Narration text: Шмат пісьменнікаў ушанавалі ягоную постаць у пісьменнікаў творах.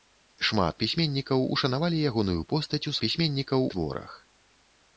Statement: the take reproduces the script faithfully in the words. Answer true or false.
true